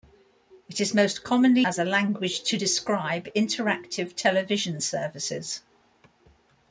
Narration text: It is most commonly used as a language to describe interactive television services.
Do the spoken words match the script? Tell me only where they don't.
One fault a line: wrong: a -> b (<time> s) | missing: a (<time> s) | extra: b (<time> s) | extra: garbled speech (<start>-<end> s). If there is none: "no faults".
missing: used (1.6 s)